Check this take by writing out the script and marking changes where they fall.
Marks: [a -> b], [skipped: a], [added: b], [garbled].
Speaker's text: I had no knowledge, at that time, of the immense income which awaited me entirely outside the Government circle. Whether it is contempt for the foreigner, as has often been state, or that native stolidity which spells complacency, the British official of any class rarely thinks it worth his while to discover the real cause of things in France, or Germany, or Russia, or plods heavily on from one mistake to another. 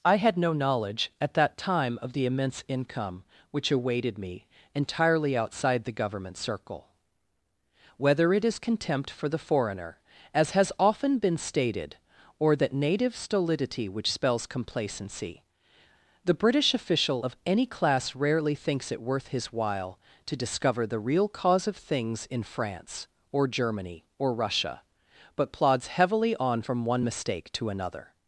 I had no knowledge, at that time, of the immense income which awaited me entirely outside the Government circle. Whether it is contempt for the foreigner, as has often been [state, -> stated] or that native stolidity which spells complacency, the British official of any class rarely thinks it worth his while to discover the real cause of things in France, or Germany, or Russia, [or -> but] plods heavily on from one mistake to another.